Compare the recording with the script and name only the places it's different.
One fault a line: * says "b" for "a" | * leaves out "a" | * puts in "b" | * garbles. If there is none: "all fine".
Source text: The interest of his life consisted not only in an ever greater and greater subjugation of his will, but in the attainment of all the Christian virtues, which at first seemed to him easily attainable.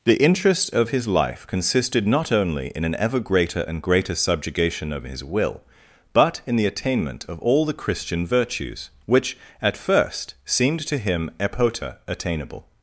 * says "epota" for "easily"